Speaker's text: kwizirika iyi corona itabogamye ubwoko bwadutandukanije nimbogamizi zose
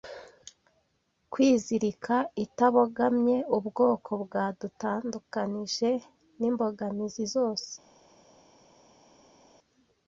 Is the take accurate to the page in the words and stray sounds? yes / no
no